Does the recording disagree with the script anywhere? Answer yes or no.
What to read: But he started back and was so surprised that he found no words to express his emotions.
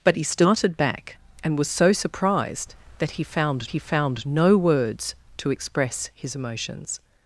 yes